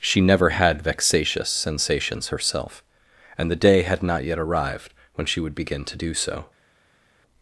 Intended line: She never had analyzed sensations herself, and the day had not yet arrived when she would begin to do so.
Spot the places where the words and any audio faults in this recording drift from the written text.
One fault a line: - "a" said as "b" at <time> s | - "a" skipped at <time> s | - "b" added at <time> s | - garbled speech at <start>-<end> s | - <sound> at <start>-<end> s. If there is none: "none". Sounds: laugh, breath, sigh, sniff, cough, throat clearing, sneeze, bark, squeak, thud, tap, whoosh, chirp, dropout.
- "analyzed" said as "vexatious" at 0.8 s